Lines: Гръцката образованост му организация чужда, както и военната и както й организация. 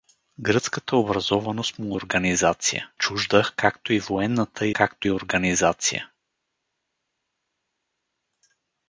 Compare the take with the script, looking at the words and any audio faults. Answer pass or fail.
pass